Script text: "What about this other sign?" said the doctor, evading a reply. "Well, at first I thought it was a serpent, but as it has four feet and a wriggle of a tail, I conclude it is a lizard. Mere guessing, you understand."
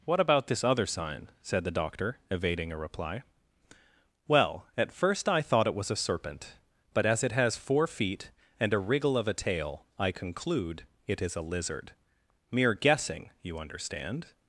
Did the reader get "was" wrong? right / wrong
right